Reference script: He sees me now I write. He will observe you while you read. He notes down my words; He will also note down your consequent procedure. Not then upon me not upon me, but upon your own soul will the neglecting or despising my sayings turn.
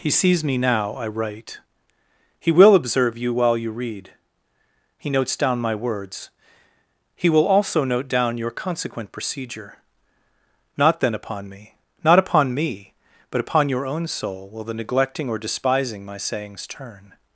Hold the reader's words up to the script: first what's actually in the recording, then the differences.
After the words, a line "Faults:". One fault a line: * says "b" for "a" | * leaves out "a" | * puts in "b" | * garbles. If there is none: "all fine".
He sees me now I write. He will observe you while you read. He notes down my words; He will also note down your consequent procedure. Not then upon me not upon me, but upon your own soul will the neglecting or despising my sayings turn.
Faults:
all fine